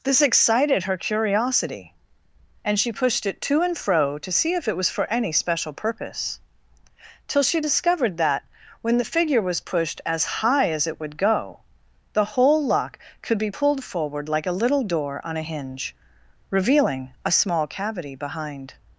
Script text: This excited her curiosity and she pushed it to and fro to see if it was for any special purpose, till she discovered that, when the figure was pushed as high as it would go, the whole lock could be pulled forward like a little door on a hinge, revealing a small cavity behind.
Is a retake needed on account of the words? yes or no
no